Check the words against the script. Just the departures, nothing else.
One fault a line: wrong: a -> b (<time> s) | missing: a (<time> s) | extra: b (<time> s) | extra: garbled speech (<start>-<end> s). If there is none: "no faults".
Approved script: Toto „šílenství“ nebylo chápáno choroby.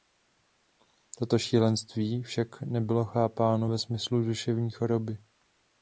extra: však (2.2 s)
extra: ve smyslu duševní (3.7 s)